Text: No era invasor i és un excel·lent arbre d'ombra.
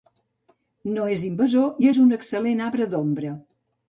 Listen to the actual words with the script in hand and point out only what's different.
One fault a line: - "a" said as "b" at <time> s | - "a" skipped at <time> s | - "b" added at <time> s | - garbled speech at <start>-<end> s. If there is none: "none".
- "era" said as "és" at 1.1 s